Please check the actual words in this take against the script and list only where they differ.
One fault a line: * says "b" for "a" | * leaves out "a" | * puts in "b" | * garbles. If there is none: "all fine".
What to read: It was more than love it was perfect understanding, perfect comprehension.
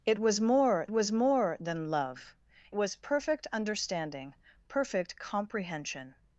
* puts in "was more"
* leaves out "it"